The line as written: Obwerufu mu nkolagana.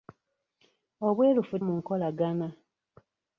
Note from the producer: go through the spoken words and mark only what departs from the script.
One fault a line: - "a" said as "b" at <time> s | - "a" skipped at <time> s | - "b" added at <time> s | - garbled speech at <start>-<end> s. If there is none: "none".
none